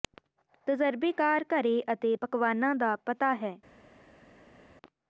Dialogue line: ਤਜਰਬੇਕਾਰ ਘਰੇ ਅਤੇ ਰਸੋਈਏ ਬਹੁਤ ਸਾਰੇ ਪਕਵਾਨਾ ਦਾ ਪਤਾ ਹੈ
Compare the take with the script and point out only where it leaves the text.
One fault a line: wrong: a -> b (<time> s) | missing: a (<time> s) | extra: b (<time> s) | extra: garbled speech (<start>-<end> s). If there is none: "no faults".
missing: ਰਸੋਈਏ ਬਹੁਤ ਸਾਰੇ (2.1 s)